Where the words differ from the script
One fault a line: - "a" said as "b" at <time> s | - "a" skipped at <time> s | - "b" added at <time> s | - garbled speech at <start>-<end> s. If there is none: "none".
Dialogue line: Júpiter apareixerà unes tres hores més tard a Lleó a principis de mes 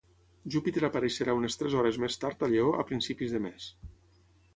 none